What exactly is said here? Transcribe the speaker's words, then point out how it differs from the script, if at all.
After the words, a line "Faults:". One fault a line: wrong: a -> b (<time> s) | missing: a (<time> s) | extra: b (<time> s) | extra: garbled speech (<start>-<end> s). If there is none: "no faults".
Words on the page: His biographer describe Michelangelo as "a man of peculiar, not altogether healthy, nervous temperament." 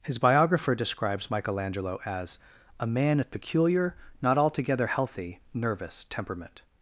His biographer describes Michelangelo as "a man of peculiar, not altogether healthy, nervous temperament."
Faults:
wrong: describe -> describes (0.8 s)